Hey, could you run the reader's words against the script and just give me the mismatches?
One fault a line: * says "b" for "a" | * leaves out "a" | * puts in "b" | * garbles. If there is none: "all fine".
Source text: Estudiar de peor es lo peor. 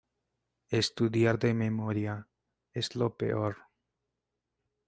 * says "memoria" for "peor"